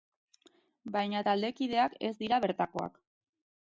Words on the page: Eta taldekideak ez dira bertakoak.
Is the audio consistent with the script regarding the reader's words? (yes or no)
no